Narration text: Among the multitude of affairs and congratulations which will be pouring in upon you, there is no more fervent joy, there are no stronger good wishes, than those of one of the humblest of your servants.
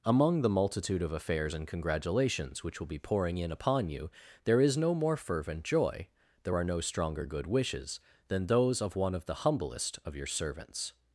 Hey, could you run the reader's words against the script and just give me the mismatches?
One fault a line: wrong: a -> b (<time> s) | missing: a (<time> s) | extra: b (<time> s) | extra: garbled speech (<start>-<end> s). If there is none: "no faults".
no faults